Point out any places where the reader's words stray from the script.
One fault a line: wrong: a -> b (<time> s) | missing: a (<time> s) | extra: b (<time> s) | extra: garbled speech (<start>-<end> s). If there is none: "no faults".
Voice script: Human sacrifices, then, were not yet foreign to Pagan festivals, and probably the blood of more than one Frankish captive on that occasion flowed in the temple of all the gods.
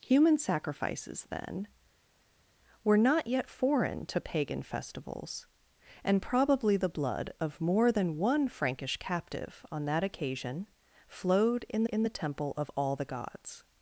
extra: in (11.9 s)